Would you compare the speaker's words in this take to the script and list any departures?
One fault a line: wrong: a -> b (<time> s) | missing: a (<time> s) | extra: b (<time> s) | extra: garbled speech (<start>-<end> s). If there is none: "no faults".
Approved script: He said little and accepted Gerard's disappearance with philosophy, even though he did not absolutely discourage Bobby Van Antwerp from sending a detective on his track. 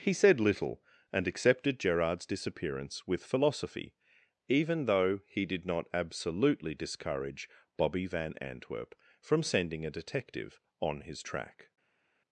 no faults